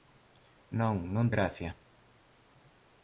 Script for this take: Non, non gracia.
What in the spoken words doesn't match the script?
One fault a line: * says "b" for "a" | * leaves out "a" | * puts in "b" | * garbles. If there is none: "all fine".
all fine